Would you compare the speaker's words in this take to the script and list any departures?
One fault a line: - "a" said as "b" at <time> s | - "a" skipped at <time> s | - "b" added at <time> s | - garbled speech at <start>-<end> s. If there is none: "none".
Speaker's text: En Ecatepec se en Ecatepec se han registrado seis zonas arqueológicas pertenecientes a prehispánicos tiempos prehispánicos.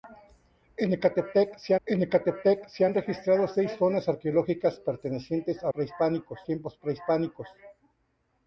none